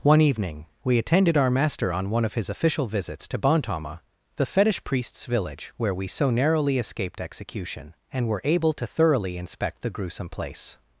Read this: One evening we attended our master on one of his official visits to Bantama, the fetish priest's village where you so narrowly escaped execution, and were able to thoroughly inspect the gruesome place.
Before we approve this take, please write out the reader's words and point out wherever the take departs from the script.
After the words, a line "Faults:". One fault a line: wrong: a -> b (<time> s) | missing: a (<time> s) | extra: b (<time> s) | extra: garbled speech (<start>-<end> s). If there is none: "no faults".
One evening we attended our master on one of his official visits to Bantama, the fetish priest's village where we so narrowly escaped execution, and were able to thoroughly inspect the gruesome place.
Faults:
wrong: you -> we (5.9 s)